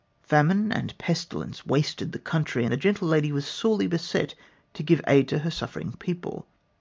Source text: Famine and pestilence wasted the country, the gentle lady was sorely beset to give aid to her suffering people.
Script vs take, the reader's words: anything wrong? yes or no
no